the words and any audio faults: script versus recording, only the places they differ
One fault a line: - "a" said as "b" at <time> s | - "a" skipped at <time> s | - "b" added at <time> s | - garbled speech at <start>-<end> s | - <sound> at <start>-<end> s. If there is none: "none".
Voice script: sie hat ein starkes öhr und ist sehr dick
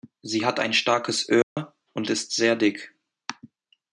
- dropout at 1.4-1.6 s